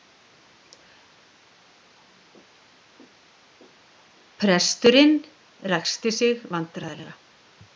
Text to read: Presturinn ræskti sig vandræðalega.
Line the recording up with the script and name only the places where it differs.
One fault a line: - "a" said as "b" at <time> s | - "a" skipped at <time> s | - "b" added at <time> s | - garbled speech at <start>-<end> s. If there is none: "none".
none